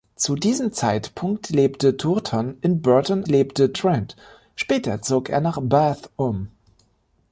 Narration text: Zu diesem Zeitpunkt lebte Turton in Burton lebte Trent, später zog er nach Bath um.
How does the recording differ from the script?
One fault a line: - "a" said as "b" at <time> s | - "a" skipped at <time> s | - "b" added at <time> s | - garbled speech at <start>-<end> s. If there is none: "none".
none